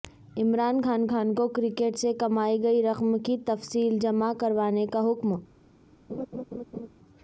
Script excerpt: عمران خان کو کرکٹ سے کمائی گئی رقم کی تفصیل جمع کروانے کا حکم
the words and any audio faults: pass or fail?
fail